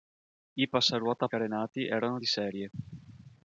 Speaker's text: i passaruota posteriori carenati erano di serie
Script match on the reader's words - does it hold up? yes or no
no